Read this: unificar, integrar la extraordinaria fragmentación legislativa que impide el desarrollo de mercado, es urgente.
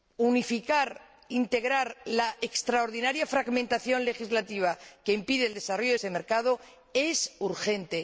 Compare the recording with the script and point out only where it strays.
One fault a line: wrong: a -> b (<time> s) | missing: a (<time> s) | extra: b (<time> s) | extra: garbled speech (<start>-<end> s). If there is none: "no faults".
extra: ese (5.9 s)